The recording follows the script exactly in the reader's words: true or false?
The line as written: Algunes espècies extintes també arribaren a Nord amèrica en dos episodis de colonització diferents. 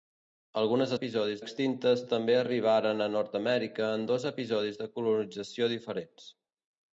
false